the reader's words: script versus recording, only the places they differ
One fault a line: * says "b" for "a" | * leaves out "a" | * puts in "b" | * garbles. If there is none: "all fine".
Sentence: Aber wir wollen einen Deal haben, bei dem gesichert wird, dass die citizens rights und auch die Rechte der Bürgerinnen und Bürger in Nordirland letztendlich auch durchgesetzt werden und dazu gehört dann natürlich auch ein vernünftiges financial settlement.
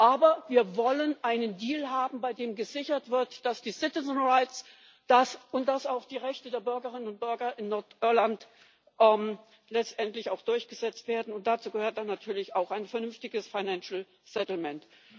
all fine